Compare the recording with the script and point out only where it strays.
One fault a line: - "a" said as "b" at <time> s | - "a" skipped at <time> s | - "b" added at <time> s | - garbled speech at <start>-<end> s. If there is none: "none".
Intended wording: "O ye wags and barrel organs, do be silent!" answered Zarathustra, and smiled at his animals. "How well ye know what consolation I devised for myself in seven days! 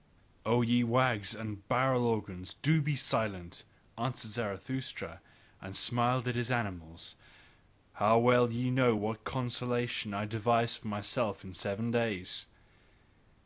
none